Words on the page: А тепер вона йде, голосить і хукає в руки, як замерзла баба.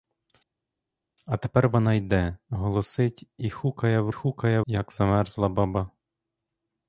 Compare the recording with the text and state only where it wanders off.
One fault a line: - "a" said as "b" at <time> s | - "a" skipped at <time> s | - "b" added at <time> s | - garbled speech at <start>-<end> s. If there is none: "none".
- "руки" said as "хукає" at 4.1 s